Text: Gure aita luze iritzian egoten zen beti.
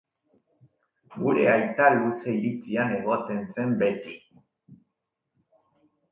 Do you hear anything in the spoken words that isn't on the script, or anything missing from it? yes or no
no